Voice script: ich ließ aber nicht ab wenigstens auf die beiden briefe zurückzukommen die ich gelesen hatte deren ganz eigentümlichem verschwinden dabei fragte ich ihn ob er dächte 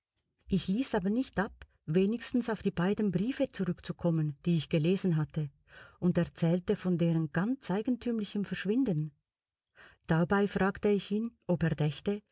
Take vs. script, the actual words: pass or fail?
fail